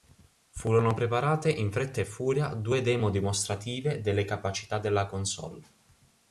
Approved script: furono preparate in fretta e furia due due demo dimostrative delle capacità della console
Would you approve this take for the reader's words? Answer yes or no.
no